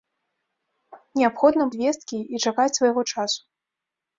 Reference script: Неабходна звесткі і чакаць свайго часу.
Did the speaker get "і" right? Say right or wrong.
right